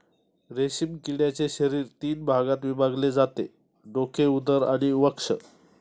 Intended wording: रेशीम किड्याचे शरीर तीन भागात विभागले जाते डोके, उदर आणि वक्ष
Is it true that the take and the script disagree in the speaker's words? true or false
false